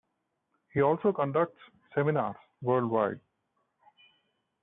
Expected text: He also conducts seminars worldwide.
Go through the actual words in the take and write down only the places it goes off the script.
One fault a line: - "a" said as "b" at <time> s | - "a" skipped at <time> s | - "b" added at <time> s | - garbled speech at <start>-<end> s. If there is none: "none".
none